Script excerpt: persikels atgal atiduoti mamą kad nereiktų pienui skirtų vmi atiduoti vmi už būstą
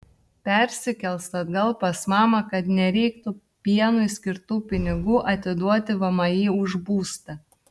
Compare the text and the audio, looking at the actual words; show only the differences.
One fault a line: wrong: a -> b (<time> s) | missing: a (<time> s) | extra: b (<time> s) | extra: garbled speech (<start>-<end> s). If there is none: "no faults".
wrong: atiduoti -> pas (1.8 s)
wrong: vmi -> pinigų (4.7 s)